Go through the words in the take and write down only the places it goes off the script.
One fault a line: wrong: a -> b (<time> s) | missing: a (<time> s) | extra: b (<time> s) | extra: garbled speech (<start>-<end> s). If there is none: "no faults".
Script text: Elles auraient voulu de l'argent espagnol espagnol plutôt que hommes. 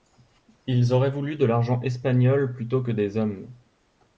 wrong: Elles -> Ils (0.7 s)
missing: espagnol (2.5 s)
extra: des (2.9 s)